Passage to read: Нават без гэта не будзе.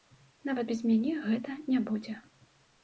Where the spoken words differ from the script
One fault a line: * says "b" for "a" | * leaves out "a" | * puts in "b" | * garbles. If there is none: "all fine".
* puts in "мяне"